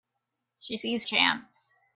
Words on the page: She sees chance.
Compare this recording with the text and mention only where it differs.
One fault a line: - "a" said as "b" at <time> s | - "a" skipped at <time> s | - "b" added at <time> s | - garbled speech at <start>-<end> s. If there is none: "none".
none